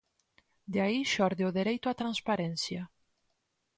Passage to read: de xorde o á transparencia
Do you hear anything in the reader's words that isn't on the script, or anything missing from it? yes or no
yes